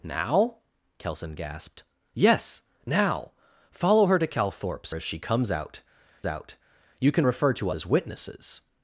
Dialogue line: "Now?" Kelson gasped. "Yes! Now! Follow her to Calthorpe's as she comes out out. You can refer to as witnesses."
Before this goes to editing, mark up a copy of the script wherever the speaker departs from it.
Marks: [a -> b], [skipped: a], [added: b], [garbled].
"Now?" Kelson gasped. "Yes! Now! Follow her to Calthorpe's as she comes out out. You can refer to as witnesses."